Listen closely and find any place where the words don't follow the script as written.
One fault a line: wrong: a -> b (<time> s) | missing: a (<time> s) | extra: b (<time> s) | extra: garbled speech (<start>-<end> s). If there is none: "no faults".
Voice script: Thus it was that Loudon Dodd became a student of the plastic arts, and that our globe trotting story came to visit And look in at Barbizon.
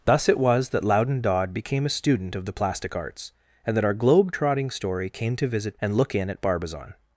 no faults